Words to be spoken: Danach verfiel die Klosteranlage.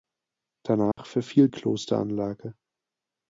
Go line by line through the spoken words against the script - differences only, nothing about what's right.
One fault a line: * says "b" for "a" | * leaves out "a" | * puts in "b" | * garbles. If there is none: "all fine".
* leaves out "die"